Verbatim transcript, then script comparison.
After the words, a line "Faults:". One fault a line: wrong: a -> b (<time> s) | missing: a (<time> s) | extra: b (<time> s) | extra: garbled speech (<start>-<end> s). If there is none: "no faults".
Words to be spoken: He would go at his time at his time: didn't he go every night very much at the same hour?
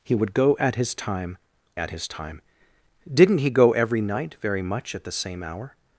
He would go at his time at his time: didn't he go every night very much at the same hour?
Faults:
no faults